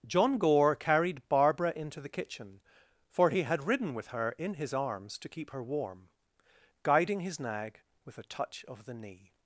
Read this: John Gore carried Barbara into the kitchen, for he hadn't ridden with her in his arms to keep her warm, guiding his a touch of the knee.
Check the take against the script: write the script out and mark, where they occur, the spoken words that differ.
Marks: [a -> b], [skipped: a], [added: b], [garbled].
John Gore carried Barbara into the kitchen, for he [hadn't -> had] ridden with her in his arms to keep her warm, guiding his [added: nag with] a touch of the knee.